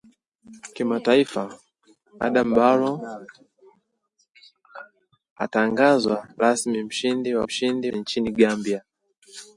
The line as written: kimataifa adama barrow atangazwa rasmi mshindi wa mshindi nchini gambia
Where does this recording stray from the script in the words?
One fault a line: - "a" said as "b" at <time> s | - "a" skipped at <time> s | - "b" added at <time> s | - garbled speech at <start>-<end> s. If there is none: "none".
none